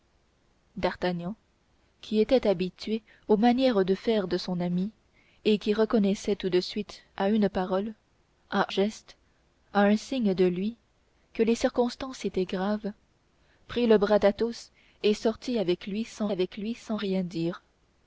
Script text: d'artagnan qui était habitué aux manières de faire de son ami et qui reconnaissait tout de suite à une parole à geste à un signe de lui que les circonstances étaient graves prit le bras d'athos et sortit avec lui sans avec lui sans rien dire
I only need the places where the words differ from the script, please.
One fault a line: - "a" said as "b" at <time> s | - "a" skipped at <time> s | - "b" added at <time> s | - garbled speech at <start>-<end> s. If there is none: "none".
none